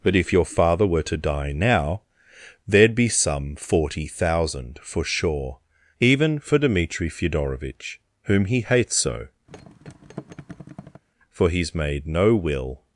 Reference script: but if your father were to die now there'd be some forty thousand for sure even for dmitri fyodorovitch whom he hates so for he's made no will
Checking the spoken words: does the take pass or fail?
pass